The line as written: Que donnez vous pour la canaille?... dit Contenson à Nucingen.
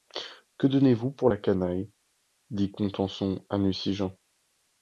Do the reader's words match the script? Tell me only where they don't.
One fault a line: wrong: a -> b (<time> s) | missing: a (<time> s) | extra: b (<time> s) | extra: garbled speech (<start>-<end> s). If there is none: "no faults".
no faults